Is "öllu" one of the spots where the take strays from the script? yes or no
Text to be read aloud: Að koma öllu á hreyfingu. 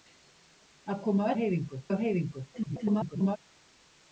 yes